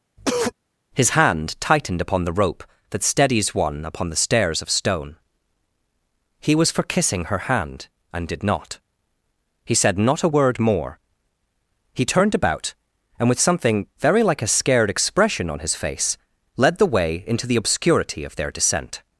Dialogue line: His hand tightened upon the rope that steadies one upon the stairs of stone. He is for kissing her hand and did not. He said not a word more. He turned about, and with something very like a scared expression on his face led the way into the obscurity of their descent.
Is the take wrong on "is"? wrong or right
wrong